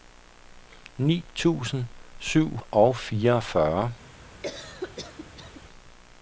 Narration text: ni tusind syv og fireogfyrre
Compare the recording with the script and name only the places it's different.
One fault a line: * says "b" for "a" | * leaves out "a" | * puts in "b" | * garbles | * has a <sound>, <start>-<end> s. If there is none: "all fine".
* has a cough, 4.4-5.6 s